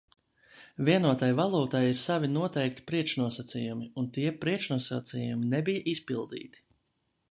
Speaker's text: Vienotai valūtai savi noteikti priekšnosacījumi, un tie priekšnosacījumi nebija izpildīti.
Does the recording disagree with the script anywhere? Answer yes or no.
yes